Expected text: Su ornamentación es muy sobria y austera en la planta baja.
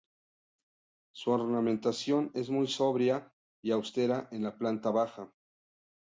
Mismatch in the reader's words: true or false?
false